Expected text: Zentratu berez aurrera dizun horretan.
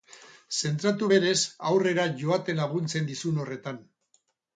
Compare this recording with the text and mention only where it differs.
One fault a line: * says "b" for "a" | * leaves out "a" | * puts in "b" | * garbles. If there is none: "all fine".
* puts in "joaten laguntzen"